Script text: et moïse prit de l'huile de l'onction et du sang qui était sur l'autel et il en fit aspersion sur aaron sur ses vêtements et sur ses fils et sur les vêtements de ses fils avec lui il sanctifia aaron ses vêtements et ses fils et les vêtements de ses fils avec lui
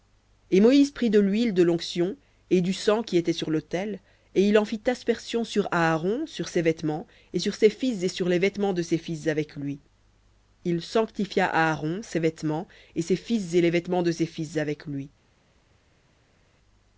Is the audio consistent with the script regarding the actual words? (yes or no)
yes